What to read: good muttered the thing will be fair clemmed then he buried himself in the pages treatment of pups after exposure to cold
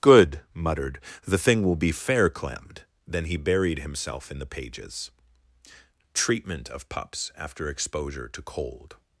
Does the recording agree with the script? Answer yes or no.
yes